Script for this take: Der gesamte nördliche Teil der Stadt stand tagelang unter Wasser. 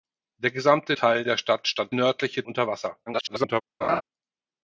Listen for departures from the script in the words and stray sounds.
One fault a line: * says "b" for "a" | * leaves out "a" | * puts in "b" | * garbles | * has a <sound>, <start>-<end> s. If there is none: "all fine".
* leaves out "nördliche"
* says "nördliche" for "tagelang"
* garbles
* has a laugh, 3.8-4.0 s